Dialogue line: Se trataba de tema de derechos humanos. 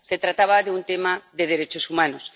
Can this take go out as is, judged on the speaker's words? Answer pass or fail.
fail